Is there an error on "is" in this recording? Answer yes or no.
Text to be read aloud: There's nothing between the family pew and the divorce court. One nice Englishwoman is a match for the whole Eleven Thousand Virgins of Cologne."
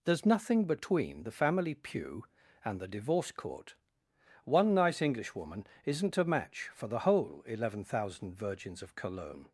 yes